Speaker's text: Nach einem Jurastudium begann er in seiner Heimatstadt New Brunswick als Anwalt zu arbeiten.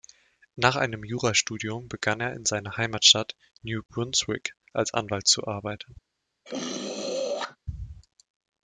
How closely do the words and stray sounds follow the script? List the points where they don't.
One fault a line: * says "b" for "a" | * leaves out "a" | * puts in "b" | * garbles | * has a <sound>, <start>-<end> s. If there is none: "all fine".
* has a throat clearing, 6.4-7.6 s